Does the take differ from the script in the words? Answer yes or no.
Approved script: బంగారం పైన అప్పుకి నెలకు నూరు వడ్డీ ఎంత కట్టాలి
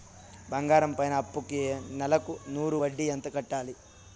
no